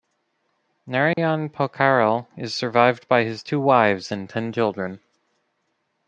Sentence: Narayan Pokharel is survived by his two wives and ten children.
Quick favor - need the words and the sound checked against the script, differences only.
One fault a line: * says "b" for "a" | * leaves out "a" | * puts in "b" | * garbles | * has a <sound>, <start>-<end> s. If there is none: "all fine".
* has a dropout, 1.1-1.2 s